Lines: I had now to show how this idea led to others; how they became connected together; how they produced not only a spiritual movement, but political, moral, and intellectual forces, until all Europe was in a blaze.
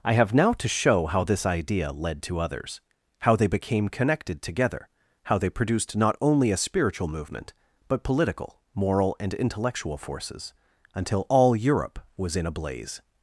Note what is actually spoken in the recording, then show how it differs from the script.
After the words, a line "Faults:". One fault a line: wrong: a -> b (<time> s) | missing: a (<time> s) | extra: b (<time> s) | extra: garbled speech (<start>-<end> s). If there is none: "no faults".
I have now to show how this idea led to others; how they became connected together; how they produced not only a spiritual movement, but political, moral, and intellectual forces, until all Europe was in a blaze.
Faults:
wrong: had -> have (0.1 s)